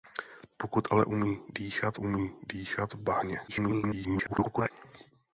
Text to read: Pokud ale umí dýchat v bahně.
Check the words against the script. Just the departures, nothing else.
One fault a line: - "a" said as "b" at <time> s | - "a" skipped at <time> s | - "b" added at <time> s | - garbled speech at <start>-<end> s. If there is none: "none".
- "umí dýchat" added at 2.0 s
- garbled speech at 3.5-4.7 s